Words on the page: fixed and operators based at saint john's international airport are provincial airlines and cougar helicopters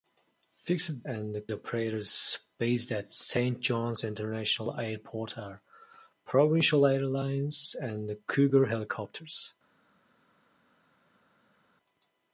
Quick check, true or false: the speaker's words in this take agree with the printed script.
true